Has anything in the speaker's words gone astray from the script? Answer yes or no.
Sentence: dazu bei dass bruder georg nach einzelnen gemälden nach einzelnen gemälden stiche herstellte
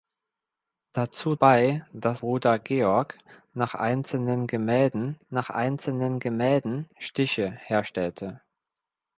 no